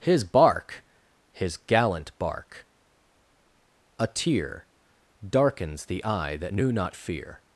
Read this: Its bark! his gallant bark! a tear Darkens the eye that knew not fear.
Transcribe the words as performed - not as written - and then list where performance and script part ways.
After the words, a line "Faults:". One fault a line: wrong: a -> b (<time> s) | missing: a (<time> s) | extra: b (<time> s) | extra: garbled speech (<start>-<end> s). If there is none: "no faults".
His bark! his gallant bark! a tear Darkens the eye that knew not fear.
Faults:
wrong: Its -> His (0.0 s)